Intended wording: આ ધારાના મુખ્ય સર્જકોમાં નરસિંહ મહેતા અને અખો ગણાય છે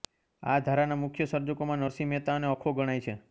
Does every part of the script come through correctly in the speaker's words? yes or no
yes